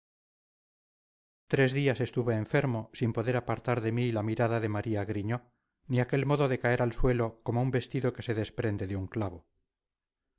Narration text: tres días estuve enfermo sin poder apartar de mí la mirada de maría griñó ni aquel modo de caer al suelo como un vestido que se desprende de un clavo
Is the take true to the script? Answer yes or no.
yes